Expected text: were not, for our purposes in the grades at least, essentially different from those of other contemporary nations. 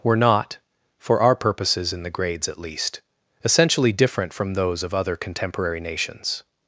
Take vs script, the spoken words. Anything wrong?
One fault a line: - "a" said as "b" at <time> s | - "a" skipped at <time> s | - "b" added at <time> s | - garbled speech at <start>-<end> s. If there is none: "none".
none